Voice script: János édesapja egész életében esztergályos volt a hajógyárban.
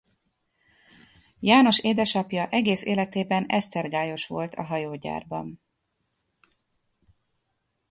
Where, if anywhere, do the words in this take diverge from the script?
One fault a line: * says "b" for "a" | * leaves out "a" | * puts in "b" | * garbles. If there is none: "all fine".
all fine